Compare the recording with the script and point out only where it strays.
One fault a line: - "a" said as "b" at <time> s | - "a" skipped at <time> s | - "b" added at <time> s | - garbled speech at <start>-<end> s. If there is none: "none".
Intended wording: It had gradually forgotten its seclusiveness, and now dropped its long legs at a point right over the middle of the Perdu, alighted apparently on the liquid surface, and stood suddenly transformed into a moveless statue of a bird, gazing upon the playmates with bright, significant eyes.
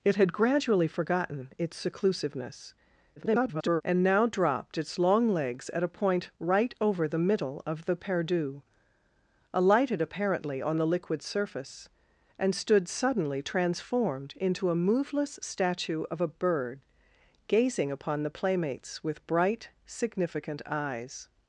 - garbled speech at 3.2-3.8 s